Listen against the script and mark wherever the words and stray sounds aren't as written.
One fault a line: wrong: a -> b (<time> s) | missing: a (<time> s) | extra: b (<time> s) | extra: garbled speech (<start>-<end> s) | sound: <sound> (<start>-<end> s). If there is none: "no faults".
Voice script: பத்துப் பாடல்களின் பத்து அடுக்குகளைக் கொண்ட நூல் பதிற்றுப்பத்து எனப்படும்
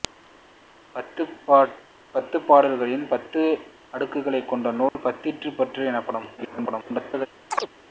sound: dropout (4.9-4.9 s)
extra: garbled speech (6.4-7.3 s)
sound: chirp (7.5-7.7 s)